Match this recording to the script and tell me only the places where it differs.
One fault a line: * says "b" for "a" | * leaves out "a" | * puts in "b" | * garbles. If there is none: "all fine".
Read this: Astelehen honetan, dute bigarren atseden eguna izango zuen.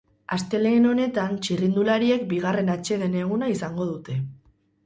* says "txirrindulariek" for "dute"
* says "dute" for "zuen"